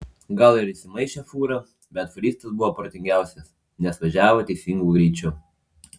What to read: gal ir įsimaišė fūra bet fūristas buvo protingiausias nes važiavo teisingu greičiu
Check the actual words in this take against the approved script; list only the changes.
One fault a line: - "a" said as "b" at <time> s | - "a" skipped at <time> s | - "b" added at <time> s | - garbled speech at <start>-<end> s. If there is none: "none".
none